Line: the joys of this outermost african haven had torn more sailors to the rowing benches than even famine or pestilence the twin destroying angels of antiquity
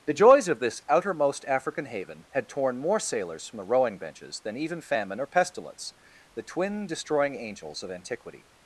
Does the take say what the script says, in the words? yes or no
no